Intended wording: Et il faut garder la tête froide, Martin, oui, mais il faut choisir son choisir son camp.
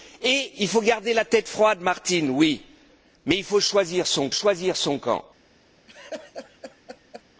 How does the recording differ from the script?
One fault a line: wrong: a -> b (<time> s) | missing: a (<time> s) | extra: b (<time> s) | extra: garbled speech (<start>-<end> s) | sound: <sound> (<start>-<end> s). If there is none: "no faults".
sound: laugh (5.9-7.2 s)